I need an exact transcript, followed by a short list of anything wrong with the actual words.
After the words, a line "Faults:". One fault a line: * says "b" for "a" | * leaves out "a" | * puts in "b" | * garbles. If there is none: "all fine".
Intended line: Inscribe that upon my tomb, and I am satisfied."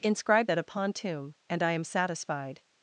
Inscribe that upon tomb, and I am satisfied."
Faults:
* leaves out "my"